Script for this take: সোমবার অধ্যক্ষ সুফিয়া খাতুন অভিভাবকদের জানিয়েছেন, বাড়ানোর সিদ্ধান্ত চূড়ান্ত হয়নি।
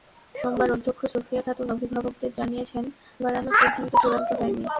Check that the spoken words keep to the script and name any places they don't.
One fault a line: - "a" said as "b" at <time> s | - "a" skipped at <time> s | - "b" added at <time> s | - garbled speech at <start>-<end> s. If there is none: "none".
none